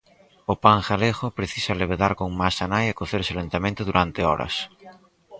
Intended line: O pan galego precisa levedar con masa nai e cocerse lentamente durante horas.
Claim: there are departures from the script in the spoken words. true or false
false